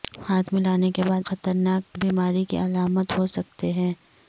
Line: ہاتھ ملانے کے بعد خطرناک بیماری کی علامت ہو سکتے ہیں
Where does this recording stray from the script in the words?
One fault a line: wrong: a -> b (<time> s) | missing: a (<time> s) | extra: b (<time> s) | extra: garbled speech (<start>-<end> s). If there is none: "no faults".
no faults